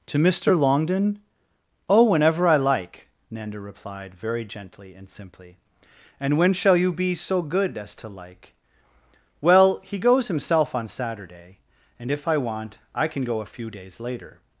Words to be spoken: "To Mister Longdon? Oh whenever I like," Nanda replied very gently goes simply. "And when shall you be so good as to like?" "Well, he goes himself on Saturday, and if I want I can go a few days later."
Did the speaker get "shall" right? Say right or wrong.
right